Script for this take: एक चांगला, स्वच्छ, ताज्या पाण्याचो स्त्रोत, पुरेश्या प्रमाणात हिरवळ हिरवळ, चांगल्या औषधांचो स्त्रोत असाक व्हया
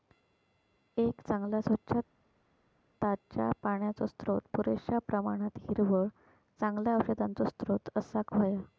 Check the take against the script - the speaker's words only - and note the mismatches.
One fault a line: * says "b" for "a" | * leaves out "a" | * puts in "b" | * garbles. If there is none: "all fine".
* leaves out "हिरवळ"